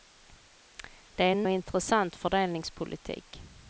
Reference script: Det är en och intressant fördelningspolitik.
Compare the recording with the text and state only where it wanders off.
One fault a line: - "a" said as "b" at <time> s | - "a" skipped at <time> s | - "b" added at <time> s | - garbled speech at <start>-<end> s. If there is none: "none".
none